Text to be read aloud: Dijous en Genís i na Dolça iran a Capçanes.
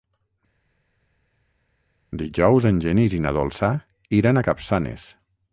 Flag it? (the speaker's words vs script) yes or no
no